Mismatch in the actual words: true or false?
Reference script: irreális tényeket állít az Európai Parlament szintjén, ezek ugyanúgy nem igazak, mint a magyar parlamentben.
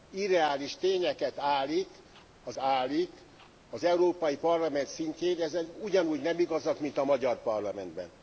true